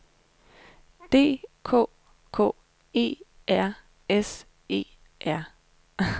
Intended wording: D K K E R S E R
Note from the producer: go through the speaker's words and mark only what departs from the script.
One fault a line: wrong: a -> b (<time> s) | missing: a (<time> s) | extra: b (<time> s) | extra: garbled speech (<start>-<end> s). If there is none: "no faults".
no faults